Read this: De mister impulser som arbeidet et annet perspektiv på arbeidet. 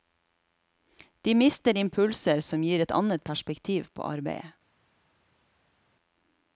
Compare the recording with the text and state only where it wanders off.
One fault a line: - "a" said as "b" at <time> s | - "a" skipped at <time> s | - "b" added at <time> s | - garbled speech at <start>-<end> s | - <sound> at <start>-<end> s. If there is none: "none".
- "arbeidet" said as "gir" at 2.6 s